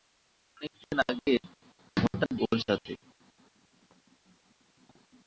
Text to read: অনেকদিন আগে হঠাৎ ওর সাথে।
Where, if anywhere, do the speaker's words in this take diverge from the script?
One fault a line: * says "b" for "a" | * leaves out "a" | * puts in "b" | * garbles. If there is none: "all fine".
all fine